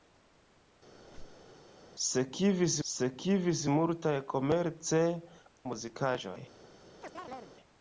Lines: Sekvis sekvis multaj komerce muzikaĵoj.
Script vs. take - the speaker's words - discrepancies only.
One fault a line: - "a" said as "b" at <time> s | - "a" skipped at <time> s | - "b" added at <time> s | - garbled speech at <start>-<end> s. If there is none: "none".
none